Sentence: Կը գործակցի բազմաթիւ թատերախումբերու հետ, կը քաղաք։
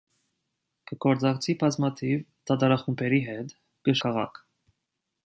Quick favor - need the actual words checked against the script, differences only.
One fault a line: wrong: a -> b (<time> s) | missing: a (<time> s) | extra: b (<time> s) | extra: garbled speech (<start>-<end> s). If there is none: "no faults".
no faults